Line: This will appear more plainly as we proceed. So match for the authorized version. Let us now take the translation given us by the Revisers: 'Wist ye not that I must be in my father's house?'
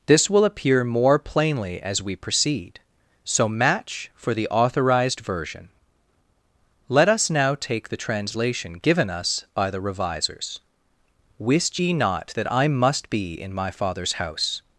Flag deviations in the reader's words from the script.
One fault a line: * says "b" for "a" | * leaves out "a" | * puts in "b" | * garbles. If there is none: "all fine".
all fine